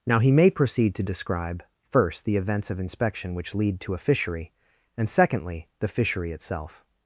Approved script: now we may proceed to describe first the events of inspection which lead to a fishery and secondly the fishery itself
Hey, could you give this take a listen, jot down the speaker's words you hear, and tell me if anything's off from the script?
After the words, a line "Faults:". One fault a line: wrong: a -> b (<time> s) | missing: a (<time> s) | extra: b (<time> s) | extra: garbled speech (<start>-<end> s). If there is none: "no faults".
now he may proceed to describe first the events of inspection which lead to a fishery and secondly the fishery itself
Faults:
wrong: we -> he (0.2 s)